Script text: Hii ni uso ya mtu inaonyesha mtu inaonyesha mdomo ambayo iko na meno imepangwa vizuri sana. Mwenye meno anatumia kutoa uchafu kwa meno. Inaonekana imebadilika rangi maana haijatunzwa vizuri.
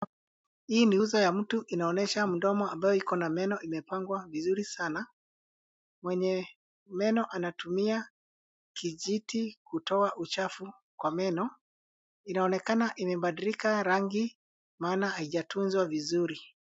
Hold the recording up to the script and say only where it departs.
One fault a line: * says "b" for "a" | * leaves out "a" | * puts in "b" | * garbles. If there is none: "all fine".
* leaves out "mtu inaonyesha"
* puts in "kijiti"